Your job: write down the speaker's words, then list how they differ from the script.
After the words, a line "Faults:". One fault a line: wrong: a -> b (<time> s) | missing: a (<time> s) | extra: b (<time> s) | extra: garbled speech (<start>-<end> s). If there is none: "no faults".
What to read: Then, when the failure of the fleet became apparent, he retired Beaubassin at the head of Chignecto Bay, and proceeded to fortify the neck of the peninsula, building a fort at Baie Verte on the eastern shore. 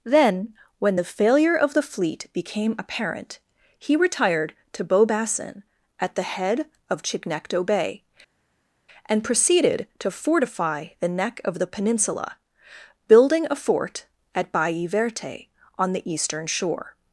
Then, when the failure of the fleet became apparent, he retired to Beaubassin at the head of Chignecto Bay, and proceeded to fortify the neck of the peninsula, building a fort at Baie Verte on the eastern shore.
Faults:
extra: to (4.7 s)